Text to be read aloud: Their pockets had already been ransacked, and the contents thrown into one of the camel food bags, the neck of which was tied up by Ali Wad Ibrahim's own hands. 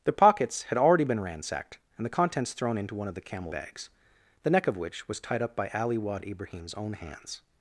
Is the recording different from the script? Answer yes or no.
yes